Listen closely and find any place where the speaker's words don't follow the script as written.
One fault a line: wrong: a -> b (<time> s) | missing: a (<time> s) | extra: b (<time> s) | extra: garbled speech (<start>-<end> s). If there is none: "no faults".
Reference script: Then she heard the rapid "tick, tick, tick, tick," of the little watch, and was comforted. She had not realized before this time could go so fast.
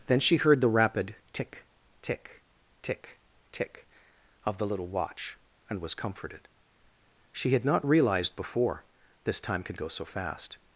no faults